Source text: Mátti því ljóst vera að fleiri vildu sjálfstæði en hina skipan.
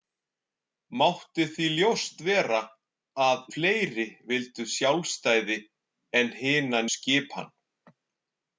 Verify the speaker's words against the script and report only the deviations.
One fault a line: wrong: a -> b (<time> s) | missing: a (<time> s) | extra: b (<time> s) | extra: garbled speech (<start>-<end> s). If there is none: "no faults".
no faults